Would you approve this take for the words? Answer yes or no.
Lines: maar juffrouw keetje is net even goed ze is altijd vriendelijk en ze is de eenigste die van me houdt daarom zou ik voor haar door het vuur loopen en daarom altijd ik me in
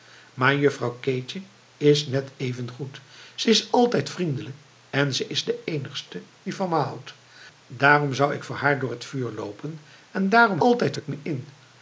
yes